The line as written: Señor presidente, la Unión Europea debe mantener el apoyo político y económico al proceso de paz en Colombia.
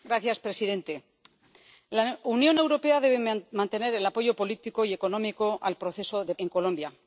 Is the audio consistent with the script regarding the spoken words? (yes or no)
no